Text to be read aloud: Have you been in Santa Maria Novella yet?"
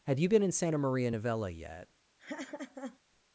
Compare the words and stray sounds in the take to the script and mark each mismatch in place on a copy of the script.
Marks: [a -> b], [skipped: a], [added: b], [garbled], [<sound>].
Have you been in Santa Maria Novella yet?" [laugh]